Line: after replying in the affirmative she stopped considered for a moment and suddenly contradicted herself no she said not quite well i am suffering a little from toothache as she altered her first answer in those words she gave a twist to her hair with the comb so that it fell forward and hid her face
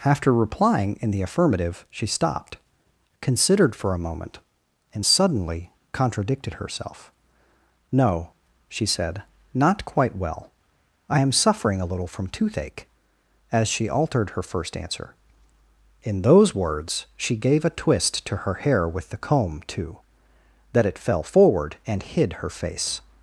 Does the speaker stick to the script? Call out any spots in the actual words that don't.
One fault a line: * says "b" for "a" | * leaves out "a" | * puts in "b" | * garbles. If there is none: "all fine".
* says "too" for "so"